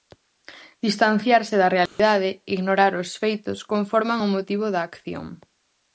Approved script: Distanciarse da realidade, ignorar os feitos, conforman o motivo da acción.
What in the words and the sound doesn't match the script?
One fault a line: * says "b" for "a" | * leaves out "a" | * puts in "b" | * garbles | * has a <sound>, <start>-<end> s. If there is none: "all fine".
* has a dropout, 1.9-2.0 s